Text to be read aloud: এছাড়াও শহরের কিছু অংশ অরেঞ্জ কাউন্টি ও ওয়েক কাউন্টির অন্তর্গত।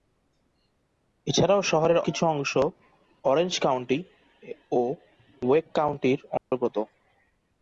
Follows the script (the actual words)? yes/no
yes